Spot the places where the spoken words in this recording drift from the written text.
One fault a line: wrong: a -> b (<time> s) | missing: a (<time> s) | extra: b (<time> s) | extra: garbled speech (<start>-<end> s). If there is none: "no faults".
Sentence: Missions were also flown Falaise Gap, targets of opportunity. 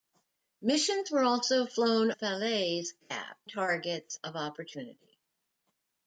no faults